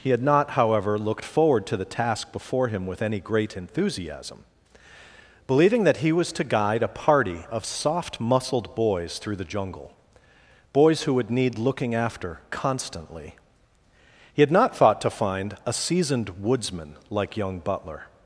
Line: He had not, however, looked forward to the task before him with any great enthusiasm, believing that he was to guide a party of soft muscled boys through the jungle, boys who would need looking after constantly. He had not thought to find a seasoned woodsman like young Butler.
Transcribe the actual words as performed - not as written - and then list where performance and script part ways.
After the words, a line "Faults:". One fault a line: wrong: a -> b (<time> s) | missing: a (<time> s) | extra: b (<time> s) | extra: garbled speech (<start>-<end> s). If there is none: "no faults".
He had not, however, looked forward to the task before him with any great enthusiasm, believing that he was to guide a party of soft muscled boys through the jungle, boys who would need looking after constantly. He had not thought to find a seasoned woodsman like young Butler.
Faults:
no faults